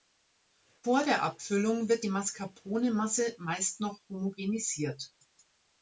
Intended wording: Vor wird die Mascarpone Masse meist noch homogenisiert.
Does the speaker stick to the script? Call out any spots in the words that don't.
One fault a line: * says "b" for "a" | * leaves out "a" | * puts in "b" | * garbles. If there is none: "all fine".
* puts in "der Abfüllung"